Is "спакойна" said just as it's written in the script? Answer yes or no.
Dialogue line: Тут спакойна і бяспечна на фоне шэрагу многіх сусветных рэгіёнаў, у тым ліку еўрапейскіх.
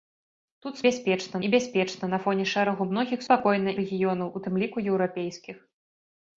no